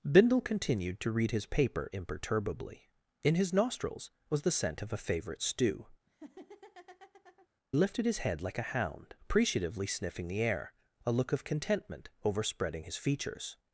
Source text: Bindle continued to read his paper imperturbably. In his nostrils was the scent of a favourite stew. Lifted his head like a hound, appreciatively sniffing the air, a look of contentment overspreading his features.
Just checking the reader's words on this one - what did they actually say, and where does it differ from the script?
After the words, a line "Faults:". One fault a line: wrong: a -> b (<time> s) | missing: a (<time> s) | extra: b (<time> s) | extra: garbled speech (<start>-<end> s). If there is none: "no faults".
Bindle continued to read his paper imperturbably. In his nostrils was the scent of a favourite stew. Lifted his head like a hound, appreciatively sniffing the air, a look of contentment overspreading his features.
Faults:
no faults